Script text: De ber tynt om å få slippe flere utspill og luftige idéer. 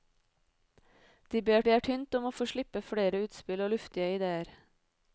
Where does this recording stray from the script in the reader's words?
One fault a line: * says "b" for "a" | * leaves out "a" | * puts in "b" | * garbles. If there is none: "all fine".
* puts in "ber"